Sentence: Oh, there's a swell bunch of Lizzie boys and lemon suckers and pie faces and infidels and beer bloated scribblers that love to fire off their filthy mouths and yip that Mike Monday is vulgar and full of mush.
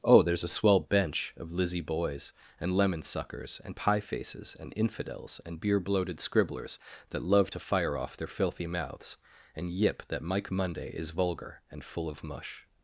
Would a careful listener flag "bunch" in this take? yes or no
yes